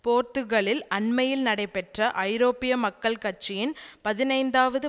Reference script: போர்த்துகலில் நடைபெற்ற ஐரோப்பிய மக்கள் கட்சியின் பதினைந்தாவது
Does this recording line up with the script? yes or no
no